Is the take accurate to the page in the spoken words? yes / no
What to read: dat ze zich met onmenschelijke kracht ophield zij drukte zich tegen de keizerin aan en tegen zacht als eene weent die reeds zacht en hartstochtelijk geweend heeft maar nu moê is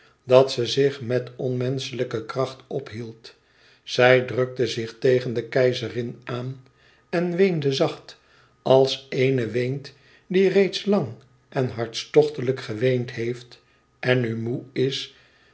no